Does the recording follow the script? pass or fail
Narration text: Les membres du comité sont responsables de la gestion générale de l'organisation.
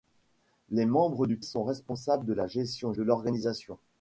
fail